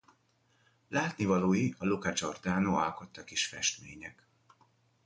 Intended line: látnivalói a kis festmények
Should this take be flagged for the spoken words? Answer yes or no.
yes